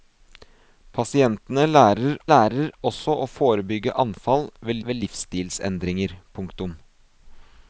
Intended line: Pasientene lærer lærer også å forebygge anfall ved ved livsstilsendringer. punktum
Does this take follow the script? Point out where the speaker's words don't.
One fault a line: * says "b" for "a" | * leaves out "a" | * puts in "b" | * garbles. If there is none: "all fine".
all fine